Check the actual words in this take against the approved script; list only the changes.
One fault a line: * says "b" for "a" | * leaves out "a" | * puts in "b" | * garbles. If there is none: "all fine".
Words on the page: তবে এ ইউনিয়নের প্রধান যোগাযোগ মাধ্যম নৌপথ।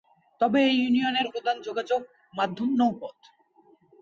all fine